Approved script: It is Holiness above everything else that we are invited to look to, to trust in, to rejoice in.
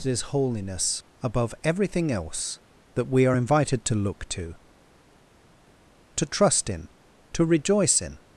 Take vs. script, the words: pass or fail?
fail